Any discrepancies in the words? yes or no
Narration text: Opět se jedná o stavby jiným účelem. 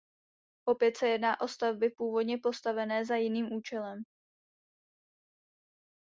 yes